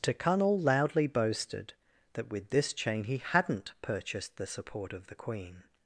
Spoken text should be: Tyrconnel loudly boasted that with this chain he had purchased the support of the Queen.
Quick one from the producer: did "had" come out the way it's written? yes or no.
no